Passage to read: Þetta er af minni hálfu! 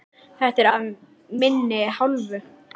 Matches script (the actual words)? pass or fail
pass